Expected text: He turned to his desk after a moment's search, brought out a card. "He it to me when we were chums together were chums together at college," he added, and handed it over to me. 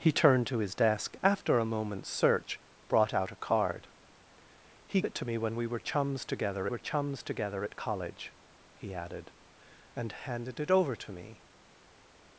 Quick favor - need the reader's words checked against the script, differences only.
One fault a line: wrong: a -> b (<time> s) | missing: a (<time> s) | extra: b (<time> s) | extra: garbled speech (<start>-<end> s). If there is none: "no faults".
no faults